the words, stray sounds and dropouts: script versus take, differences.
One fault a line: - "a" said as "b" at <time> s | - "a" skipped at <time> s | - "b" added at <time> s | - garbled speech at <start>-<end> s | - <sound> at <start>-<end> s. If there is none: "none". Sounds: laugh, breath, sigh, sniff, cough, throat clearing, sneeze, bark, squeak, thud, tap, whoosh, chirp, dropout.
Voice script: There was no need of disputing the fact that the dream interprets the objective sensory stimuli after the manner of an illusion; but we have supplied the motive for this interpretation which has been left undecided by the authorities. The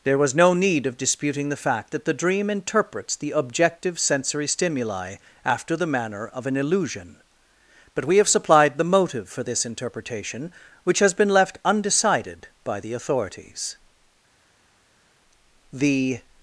none